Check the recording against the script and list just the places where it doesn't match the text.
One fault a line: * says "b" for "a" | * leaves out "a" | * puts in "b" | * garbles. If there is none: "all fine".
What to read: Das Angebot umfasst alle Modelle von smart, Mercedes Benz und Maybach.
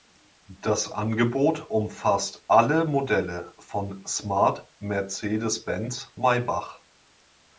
* leaves out "und"